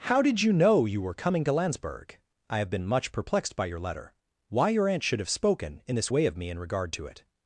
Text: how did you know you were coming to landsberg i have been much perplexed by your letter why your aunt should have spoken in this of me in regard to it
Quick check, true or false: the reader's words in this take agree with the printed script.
false